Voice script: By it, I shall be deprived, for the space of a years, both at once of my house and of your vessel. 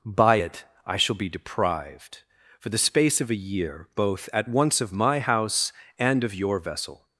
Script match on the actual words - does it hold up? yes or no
no